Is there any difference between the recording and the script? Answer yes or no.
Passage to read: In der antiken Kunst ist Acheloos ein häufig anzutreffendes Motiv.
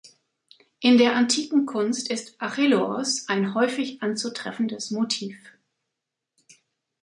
no